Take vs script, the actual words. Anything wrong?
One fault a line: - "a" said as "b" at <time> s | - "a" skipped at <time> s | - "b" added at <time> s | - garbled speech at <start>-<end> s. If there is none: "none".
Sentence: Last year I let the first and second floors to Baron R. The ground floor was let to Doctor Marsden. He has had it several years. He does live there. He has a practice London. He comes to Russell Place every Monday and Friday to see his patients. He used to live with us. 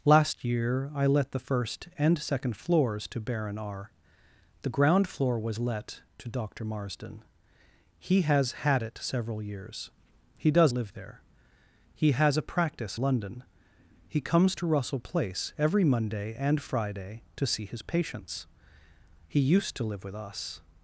none